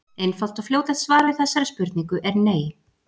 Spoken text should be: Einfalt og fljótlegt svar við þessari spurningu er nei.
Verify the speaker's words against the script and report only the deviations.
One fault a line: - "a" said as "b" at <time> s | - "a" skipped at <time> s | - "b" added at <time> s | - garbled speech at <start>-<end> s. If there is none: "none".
none